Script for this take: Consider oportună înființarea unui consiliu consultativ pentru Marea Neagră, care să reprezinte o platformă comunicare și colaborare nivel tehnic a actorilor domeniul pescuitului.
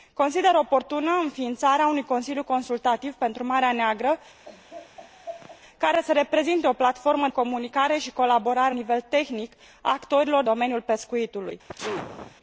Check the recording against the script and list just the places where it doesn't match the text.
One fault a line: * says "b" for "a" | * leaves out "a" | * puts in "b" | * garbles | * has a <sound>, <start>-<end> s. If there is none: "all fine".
* has a laugh, 4.4-5.6 s
* has a sneeze, 11.7-12.4 s